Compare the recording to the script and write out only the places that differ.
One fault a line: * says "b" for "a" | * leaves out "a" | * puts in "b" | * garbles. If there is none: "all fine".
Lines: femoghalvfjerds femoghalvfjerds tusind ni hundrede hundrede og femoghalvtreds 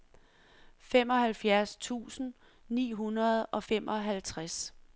* leaves out "femoghalvfjerds"
* leaves out "hundrede"